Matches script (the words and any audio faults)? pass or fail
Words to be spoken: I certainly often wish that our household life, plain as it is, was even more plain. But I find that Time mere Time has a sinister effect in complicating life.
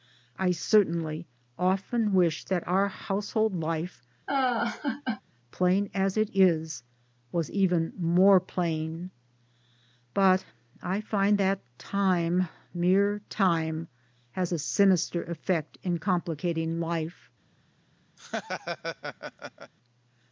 fail